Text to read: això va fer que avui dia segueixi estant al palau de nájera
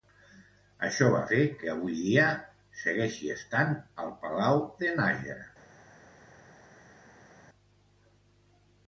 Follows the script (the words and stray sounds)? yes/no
yes